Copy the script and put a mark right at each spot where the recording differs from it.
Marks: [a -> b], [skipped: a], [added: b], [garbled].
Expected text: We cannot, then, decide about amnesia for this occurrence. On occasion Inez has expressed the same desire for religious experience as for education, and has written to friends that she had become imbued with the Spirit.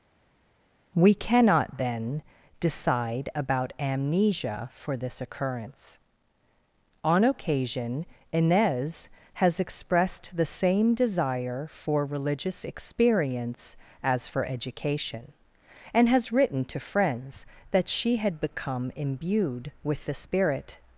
We cannot, then, decide about amnesia for this occurrence. On occasion Inez has expressed the same desire for religious experience as for education, and has written to friends that she had become imbued with the Spirit.